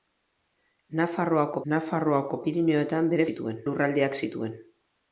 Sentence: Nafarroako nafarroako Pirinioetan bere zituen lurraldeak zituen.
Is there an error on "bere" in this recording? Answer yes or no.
no